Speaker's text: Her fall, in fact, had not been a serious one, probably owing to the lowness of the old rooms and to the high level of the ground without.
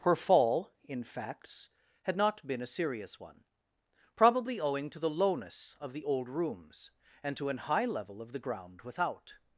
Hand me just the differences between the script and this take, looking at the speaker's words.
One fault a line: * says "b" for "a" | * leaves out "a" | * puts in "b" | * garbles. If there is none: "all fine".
* says "facts" for "fact"
* says "an" for "the"